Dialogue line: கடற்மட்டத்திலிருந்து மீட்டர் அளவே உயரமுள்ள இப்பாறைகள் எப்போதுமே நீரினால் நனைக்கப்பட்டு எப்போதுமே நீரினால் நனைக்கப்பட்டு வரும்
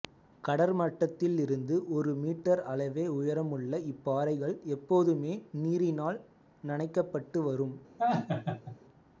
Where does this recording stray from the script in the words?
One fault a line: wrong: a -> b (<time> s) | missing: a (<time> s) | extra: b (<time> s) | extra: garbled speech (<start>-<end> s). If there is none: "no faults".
extra: ஒரு (1.9 s)
missing: எப்போதுமே நீரினால் நனைக்கப்பட்டு (7.4 s)